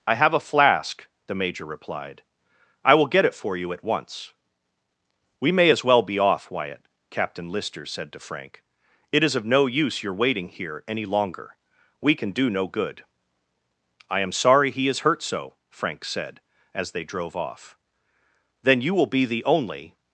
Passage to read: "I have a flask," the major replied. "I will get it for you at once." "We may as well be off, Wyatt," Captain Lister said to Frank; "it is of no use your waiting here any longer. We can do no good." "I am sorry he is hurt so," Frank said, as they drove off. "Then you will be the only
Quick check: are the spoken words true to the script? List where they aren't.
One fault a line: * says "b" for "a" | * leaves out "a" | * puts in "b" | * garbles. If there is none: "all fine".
all fine